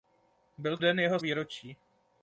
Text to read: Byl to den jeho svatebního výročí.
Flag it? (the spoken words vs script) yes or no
yes